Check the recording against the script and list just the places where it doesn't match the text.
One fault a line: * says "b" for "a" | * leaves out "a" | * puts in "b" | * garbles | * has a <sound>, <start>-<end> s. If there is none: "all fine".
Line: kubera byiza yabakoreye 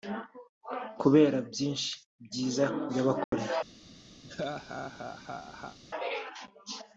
* puts in "byinshi"
* has a dropout, 3.2-3.3 s
* has a laugh, 4.2-5.8 s